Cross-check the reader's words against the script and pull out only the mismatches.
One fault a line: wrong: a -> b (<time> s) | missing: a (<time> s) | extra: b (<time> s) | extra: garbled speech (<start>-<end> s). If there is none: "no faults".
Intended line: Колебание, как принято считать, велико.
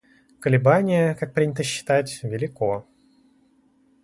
no faults